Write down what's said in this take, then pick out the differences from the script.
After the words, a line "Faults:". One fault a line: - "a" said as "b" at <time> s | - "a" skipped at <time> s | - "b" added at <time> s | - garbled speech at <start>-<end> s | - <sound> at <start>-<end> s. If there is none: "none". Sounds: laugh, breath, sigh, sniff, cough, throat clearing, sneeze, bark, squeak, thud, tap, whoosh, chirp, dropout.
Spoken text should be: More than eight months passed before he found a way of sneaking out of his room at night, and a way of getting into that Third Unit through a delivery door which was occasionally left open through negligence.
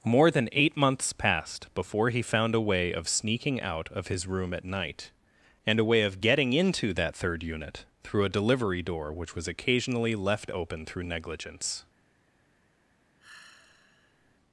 More than eight months passed before he found a way of sneaking out of his room at night, and a way of getting into that Third Unit through a delivery door which was occasionally left open through negligence.
Faults:
- sigh at 13.2-14.4 s